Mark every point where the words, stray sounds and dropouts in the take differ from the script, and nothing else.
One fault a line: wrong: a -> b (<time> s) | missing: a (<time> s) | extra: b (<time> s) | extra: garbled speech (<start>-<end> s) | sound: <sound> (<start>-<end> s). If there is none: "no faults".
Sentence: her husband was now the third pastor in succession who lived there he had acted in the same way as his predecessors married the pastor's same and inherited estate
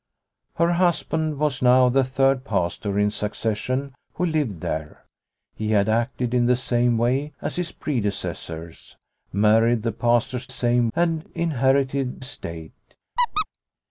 sound: squeak (13.2-13.5 s)